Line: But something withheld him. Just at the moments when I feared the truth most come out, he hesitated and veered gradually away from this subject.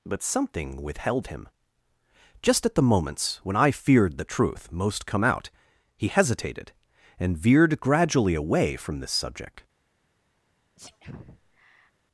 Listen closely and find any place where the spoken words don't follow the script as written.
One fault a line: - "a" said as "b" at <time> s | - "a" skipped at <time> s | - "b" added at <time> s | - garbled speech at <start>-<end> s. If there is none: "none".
none